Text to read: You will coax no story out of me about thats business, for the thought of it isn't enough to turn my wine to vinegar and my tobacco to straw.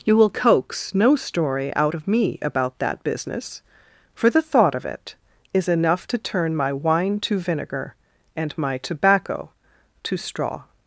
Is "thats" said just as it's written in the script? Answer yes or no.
no